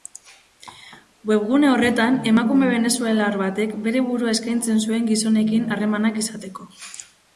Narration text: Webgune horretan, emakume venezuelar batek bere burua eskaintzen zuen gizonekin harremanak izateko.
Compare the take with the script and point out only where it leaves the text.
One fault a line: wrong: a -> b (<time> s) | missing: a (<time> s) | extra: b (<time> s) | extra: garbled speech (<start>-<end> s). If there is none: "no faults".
no faults